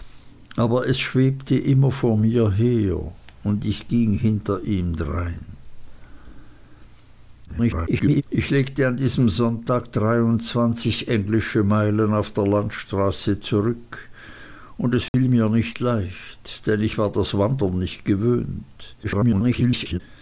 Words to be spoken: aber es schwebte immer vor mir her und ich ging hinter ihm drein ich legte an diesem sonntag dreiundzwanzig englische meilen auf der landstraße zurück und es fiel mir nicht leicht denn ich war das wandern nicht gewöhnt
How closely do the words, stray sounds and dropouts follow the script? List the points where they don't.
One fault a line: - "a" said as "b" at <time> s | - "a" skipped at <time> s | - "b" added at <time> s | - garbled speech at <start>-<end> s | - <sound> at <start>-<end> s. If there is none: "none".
- garbled speech at 7.5-8.2 s
- dropout at 15.1-15.1 s
- garbled speech at 19.0-20.0 s